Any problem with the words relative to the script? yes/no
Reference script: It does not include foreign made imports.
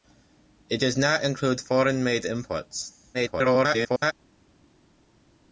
yes